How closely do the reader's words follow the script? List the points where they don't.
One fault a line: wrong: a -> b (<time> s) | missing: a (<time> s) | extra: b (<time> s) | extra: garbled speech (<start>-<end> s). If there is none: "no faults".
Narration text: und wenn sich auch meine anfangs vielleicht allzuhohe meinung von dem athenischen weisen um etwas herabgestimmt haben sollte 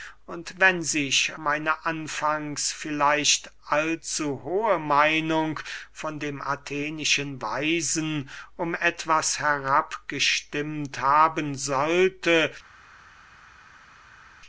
missing: auch (1.4 s)